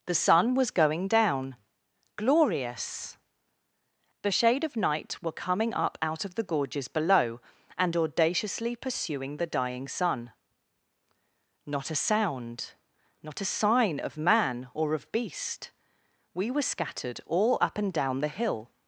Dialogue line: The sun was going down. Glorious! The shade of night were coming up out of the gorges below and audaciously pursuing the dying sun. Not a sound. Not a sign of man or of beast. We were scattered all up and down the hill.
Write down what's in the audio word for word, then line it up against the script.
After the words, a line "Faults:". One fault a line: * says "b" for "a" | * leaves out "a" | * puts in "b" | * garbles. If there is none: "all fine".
The sun was going down. Glorious! The shade of night were coming up out of the gorges below and audaciously pursuing the dying sun. Not a sound. Not a sign of man or of beast. We were scattered all up and down the hill.
Faults:
all fine